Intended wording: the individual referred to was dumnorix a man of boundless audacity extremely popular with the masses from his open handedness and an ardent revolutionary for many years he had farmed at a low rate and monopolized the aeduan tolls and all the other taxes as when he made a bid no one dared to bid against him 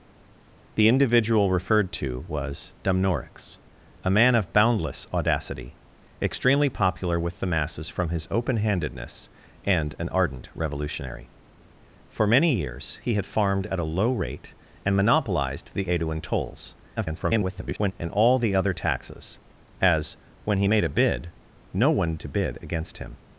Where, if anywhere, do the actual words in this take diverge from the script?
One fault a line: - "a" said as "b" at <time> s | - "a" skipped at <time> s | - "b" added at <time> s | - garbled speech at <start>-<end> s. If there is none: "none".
- garbled speech at 17.0-17.9 s
- "dared" skipped at 22.2 s